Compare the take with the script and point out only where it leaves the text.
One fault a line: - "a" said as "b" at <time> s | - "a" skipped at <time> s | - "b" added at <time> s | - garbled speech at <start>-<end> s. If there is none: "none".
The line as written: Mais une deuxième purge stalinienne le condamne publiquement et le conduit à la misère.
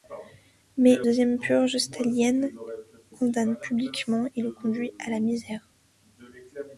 - "une" skipped at 1.0 s
- "le" skipped at 2.5 s